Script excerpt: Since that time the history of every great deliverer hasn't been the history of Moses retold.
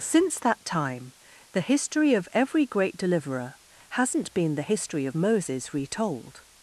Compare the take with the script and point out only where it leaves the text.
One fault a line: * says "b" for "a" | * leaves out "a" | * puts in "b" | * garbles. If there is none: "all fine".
all fine